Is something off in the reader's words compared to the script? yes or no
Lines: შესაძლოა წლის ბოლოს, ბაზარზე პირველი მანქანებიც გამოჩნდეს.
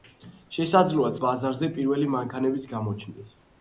yes